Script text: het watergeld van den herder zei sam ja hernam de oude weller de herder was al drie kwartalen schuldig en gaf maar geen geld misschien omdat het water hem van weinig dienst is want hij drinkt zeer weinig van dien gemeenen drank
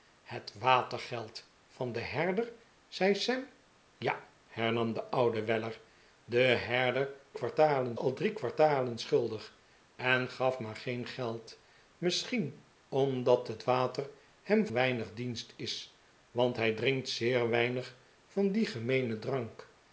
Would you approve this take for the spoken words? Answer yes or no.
no